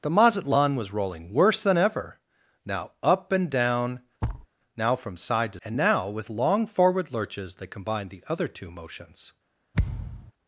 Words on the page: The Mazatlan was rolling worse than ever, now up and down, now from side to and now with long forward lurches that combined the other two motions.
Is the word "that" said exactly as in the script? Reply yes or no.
yes